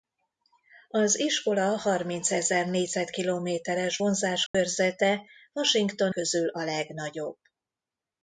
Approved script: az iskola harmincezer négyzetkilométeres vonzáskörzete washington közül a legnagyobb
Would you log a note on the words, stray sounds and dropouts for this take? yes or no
yes